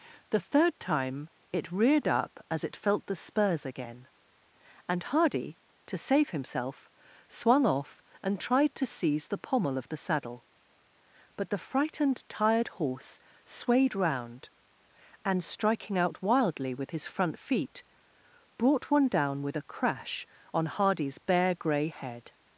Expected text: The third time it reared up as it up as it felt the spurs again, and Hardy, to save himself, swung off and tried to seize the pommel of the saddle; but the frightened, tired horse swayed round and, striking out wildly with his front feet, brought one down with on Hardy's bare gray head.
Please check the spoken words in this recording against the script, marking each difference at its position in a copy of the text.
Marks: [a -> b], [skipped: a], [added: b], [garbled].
The third time it reared up as it [skipped: up as it] felt the spurs again, and Hardy, to save himself, swung off and tried to seize the pommel of the saddle; but the frightened, tired horse swayed round and, striking out wildly with his front feet, brought one down with [added: a crash] on Hardy's bare gray head.